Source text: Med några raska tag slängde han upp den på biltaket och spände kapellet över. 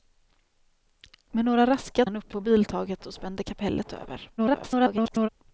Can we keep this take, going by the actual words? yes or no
no